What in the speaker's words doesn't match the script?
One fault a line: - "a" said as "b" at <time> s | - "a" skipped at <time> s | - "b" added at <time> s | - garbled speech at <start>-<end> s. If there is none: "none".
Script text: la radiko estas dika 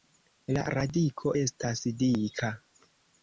none